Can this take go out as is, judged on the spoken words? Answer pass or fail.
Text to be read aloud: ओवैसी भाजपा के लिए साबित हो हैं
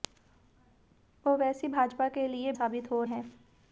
pass